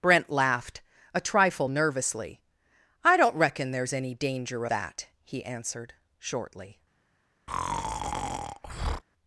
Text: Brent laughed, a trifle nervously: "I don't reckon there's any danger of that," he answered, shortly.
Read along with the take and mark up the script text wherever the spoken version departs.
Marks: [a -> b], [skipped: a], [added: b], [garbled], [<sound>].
Brent laughed, a trifle nervously: "I don't reckon there's any danger [skipped: of] that," he answered, shortly. [breath]